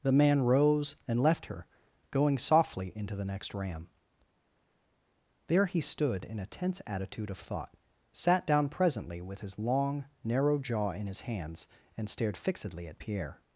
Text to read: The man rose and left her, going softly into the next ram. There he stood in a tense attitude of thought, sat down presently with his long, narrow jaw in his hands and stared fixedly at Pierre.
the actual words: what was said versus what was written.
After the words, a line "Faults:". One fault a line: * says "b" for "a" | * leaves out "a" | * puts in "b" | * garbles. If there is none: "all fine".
The man rose and left her, going softly into the next ram. There he stood in a tense attitude of thought, sat down presently with his long, narrow jaw in his hands and stared fixedly at Pierre.
Faults:
all fine